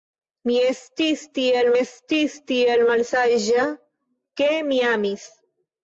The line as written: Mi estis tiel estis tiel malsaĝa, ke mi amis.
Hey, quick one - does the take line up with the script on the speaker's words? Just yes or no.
yes